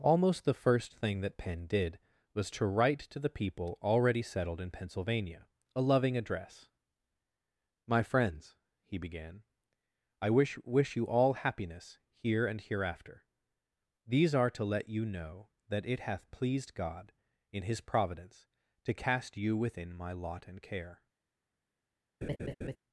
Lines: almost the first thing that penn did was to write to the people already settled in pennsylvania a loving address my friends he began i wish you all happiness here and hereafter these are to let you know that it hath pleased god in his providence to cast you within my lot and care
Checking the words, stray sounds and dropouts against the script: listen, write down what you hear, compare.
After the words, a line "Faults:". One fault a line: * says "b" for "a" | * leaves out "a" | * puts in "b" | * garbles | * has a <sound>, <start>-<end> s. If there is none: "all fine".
almost the first thing that penn did was to write to the people already settled in pennsylvania a loving address my friends he began i wish wish you all happiness here and hereafter these are to let you know that it hath pleased god in his providence to cast you within my lot and care
Faults:
* puts in "wish"
* has a laugh, 22.2-22.8 s